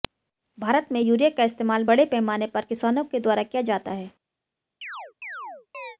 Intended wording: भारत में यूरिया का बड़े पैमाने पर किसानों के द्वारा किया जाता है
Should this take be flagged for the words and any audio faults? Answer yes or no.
yes